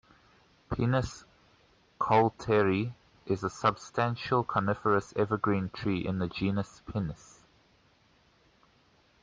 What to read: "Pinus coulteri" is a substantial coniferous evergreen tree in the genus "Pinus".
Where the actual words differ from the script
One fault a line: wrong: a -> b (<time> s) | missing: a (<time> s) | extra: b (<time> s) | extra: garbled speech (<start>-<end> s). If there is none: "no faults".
no faults